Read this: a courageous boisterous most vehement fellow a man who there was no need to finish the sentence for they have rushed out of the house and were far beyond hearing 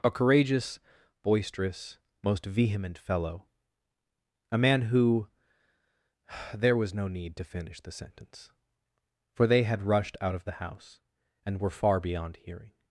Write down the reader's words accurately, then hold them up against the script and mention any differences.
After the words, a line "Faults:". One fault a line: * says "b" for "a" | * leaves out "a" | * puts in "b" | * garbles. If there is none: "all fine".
a courageous boisterous most vehement fellow a man who there was no need to finish the sentence for they had rushed out of the house and were far beyond hearing
Faults:
* says "had" for "have"